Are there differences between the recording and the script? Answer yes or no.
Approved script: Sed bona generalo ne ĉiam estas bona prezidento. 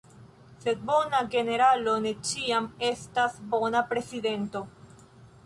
no